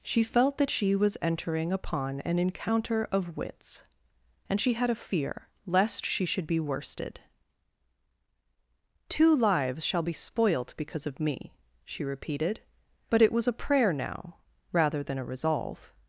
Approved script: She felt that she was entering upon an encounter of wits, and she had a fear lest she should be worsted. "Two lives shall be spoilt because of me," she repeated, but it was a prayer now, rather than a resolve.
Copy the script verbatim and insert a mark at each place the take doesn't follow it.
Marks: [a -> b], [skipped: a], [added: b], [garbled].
She felt that she was entering upon an encounter of wits, and she had a fear lest she should be worsted. "Two lives shall be spoilt because of me," she repeated, but it was a prayer now, rather than a resolve.